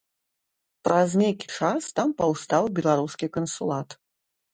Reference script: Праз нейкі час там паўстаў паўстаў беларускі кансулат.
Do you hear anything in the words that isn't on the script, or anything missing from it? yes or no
yes